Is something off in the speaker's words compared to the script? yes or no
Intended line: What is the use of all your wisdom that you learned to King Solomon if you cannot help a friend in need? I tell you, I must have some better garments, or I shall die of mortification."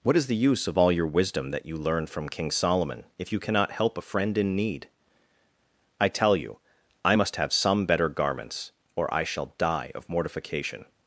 yes